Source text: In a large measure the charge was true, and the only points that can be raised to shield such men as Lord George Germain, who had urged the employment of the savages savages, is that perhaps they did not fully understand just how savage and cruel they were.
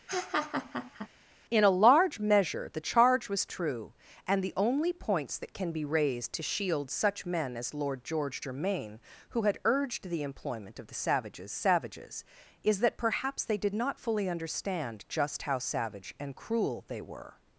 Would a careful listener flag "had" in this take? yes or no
no